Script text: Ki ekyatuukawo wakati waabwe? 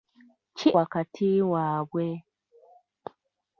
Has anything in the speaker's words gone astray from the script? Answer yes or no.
yes